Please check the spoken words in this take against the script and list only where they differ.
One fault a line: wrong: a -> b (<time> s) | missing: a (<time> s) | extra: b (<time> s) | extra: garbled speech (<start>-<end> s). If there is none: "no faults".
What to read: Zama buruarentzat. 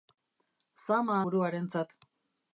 no faults